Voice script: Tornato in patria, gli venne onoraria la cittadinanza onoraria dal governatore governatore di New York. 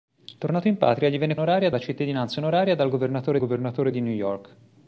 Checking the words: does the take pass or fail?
pass